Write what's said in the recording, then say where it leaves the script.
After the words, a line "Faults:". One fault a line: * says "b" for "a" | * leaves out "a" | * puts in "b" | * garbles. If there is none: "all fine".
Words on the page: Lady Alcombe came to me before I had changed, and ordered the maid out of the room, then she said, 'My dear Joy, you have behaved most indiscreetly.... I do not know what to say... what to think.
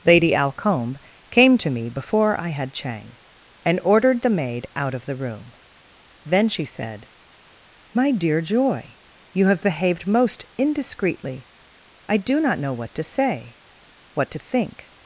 Lady Alcombe came to me before I had chang, and ordered the maid out of the room, then she said, 'My dear Joy, you have behaved most indiscreetly.... I do not know what to say... what to think.
Faults:
* says "chang" for "changed"